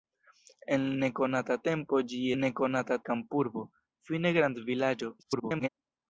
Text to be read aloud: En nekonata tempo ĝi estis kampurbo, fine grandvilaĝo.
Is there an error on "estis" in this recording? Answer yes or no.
yes